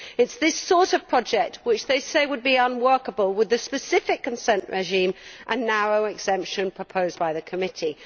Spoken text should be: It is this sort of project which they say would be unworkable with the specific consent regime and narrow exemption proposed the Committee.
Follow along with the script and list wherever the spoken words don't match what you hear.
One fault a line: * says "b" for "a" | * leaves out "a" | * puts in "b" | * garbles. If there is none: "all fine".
* puts in "by"